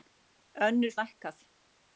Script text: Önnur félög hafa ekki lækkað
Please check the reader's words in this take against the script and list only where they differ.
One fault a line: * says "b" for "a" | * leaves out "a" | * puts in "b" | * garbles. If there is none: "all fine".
* leaves out "félög hafa ekki"